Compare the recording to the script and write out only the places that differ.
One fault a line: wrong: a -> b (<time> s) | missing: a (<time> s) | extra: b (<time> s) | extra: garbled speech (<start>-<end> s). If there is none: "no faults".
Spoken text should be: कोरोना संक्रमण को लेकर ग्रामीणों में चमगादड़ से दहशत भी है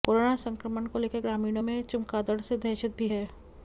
no faults